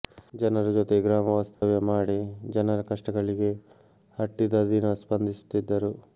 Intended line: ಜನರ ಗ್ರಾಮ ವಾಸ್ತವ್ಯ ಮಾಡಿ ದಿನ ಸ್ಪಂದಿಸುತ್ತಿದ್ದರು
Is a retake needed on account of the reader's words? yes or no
yes